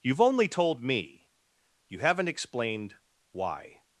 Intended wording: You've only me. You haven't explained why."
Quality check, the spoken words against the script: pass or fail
fail